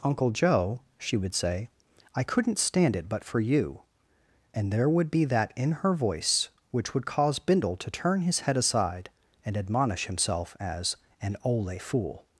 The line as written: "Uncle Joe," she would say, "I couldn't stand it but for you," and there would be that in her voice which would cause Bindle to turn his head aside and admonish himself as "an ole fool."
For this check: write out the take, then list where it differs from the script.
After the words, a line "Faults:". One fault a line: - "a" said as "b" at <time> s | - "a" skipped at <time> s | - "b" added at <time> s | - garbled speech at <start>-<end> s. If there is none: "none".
"Uncle Joe," she would say, "I couldn't stand it but for you," and there would be that in her voice which would cause Bindle to turn his head aside and admonish himself as "an ole fool."
Faults:
none